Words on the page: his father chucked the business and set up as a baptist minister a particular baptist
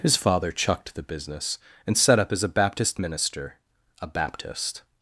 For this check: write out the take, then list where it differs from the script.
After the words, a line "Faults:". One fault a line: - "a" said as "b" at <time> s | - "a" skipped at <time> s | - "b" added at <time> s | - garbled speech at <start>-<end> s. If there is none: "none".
his father chucked the business and set up as a baptist minister a baptist
Faults:
- "particular" skipped at 4.1 s